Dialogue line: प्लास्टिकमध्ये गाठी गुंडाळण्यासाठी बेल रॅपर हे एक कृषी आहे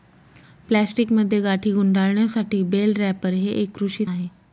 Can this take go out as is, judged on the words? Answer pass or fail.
pass